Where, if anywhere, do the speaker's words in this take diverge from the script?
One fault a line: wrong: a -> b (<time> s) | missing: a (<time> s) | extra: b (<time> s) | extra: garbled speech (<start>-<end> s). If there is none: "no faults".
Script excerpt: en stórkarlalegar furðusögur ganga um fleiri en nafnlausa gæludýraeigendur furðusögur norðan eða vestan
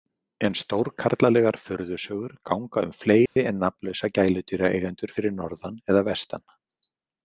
wrong: furðusögur -> fyrir (5.2 s)